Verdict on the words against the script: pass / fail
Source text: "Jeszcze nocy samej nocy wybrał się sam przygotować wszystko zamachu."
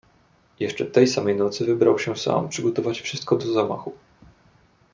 fail